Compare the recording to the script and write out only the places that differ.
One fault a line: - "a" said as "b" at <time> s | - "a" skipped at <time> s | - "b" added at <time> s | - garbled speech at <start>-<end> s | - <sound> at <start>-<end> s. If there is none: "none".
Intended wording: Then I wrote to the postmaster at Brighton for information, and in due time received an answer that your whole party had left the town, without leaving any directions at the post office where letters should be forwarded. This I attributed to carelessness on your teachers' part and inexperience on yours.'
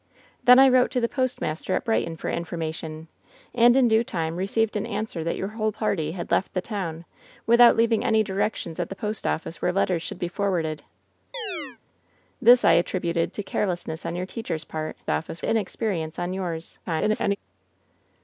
- chirp at 11.3-11.8 s
- "and" said as "office" at 15.1 s
- garbled speech at 16.9-17.4 s